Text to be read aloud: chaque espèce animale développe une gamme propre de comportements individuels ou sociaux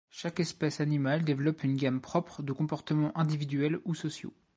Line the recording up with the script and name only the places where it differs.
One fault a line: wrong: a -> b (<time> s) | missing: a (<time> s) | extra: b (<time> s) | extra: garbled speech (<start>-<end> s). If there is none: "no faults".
no faults